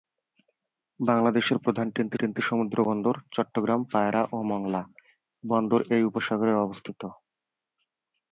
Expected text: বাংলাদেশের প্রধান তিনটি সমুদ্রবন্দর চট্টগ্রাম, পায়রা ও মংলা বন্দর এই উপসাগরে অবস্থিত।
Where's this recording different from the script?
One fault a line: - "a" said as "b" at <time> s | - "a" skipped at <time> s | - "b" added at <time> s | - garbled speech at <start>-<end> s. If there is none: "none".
- "তিনটি" added at 2.2 s